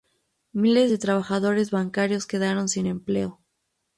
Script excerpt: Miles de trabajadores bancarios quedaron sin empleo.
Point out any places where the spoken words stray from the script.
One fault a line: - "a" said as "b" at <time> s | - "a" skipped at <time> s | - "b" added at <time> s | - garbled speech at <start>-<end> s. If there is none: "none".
none